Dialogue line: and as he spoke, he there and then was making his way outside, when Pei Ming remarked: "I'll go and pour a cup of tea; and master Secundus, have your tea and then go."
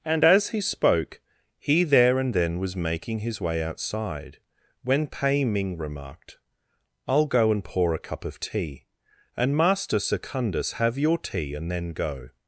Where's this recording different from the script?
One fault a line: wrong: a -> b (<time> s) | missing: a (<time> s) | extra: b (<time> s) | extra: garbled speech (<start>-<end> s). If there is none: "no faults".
no faults